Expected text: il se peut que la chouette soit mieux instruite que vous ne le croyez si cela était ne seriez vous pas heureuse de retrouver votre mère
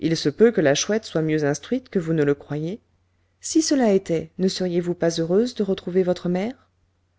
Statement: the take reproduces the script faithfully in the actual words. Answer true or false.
true